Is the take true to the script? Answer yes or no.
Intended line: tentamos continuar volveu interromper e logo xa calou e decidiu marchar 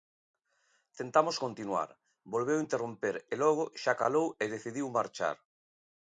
yes